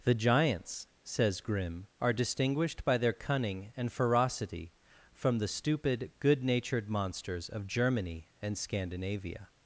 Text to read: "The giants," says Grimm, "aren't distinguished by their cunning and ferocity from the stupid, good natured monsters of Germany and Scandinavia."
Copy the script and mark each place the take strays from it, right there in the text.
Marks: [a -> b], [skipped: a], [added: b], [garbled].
"The giants," says Grimm, ["aren't -> are] distinguished by their cunning and ferocity from the stupid, good natured monsters of Germany and Scandinavia."